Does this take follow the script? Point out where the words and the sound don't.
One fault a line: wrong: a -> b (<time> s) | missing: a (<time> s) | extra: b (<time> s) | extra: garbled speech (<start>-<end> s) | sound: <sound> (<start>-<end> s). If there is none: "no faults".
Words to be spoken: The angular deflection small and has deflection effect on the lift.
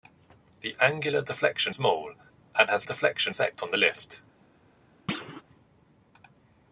sound: thud (5.1-5.4 s)